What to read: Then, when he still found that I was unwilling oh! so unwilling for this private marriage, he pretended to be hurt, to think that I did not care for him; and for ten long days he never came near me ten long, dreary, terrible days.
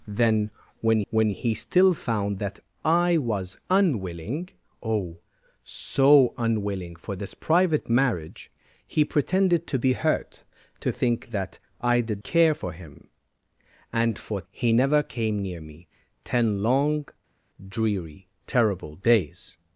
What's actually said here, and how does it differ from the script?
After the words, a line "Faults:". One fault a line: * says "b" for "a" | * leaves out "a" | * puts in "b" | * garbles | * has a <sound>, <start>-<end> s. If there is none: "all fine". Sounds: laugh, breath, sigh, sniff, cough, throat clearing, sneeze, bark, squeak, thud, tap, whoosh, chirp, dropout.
Then, when when he still found that I was unwilling oh! so unwilling for this private marriage, he pretended to be hurt, to think that I did care for him; and for he never came near me ten long, dreary, terrible days.
Faults:
* puts in "when"
* leaves out "not"
* leaves out "ten long days"